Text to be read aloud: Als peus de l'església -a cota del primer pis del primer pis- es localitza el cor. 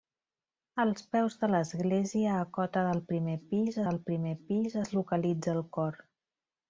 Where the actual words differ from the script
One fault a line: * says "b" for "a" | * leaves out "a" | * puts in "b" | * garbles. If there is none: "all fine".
all fine